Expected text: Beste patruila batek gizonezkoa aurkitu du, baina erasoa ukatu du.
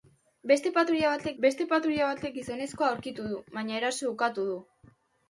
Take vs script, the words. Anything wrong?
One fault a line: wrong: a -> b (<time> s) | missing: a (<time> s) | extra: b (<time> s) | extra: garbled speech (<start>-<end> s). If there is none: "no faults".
extra: beste patruila batek (1.4 s)